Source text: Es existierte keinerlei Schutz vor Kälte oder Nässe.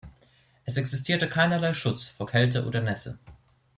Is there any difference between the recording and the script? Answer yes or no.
no